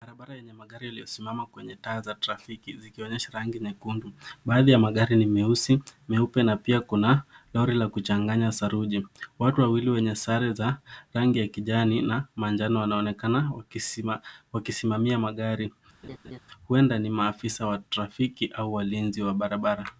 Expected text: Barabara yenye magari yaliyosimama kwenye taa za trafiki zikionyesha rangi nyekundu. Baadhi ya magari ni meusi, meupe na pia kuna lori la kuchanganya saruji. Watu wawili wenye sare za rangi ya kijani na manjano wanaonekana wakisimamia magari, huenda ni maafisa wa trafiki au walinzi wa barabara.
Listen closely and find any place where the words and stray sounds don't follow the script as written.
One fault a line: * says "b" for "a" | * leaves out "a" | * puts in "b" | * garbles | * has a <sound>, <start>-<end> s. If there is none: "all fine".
* has a laugh, 16.0-16.4 s